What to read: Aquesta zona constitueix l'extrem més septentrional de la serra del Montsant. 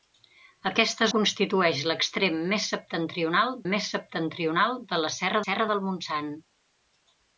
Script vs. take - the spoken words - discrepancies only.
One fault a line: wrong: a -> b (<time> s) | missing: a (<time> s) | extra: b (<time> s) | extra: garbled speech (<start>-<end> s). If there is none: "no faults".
missing: zona (1.1 s)
extra: més septentrional (3.7 s)
extra: serra (5.4 s)